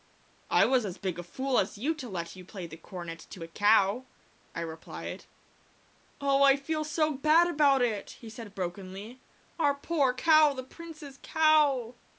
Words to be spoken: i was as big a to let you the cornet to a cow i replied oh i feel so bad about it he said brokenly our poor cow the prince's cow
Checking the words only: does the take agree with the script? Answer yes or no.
no